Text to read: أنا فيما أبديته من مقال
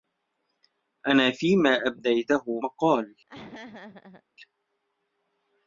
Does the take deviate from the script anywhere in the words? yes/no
yes